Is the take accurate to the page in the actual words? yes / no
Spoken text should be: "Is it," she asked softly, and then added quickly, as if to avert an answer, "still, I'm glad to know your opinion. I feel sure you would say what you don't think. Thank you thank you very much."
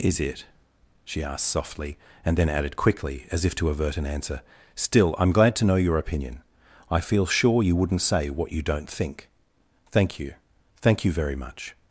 no